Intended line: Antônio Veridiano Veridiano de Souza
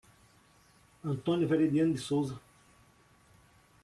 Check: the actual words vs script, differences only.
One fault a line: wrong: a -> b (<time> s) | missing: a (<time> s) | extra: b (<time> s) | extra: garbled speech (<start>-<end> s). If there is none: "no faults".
missing: Veridiano (1.9 s)